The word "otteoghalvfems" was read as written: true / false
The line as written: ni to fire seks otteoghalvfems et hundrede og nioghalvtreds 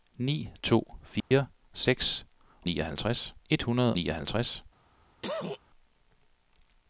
false